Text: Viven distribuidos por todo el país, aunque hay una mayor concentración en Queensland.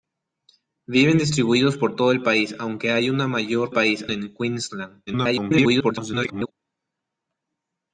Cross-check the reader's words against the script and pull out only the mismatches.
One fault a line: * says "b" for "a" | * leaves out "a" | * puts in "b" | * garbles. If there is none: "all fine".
* says "país" for "concentración"
* garbles